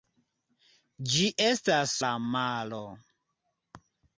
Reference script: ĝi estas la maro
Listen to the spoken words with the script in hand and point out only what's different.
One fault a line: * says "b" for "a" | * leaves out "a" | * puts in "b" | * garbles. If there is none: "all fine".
all fine